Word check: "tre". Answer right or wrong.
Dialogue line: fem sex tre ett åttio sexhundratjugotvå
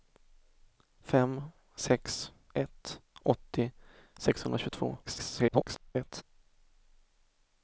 wrong